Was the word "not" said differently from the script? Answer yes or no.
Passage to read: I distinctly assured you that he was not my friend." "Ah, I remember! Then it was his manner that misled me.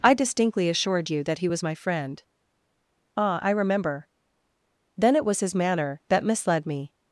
yes